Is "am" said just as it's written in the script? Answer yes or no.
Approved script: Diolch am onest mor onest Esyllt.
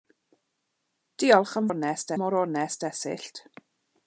yes